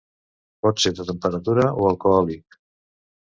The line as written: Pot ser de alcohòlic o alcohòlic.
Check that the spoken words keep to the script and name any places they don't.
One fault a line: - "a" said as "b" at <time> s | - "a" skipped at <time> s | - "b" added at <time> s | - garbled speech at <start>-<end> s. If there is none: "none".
- "alcohòlic" said as "temperatura" at 1.1 s